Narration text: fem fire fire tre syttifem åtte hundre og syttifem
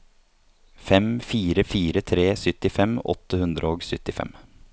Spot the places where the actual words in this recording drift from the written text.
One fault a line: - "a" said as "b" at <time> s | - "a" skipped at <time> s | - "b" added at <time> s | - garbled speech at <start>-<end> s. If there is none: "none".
none